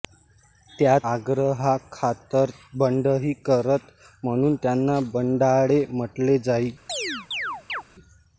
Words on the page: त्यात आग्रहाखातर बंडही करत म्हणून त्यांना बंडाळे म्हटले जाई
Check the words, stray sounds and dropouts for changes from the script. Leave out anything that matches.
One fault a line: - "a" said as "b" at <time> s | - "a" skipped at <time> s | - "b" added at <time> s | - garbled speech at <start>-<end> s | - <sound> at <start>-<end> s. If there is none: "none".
- chirp at 6.9-7.8 s